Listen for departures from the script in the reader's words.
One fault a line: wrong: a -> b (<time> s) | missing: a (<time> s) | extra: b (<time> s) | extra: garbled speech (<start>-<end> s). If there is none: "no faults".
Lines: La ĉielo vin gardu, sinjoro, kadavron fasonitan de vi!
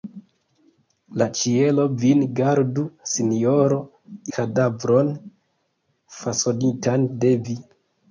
no faults